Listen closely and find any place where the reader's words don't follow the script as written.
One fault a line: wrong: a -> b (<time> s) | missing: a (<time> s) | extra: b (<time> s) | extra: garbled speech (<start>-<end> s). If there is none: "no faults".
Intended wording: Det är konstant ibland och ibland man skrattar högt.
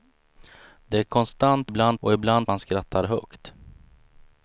no faults